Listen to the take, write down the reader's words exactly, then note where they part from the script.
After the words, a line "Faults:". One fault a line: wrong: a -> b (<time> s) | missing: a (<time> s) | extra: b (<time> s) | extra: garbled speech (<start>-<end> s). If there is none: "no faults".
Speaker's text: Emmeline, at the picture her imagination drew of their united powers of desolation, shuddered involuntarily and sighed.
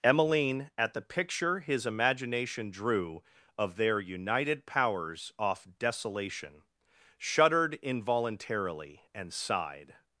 Emmeline, at the picture his imagination drew of their united powers off desolation, shuddered involuntarily and sighed.
Faults:
wrong: her -> his (1.6 s)
wrong: of -> off (5.4 s)